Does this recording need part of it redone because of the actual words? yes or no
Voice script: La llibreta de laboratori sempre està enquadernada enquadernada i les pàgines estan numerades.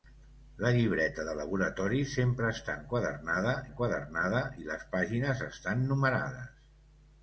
no